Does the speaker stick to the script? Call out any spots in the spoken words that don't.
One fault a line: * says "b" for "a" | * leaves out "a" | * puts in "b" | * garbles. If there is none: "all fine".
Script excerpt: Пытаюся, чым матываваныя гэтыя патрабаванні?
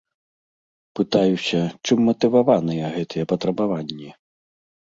all fine